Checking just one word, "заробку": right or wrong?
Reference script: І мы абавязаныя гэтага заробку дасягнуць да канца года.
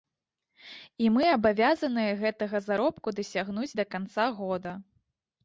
right